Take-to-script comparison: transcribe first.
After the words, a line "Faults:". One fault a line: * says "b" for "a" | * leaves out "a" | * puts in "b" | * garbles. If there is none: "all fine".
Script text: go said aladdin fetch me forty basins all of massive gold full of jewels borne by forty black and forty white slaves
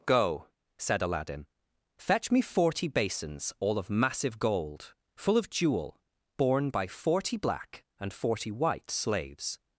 go said aladdin fetch me forty basins all of massive gold full of jewel borne by forty black and forty white slaves
Faults:
* says "jewel" for "jewels"